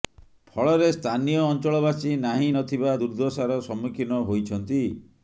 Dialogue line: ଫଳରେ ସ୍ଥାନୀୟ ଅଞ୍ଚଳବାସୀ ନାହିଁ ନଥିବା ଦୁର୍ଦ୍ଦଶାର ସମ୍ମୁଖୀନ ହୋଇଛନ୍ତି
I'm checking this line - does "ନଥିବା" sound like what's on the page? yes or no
yes